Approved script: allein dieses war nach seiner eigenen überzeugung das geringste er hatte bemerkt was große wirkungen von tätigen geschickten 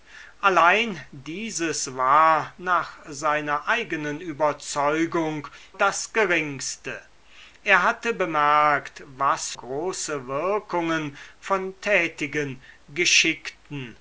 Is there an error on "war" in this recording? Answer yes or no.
no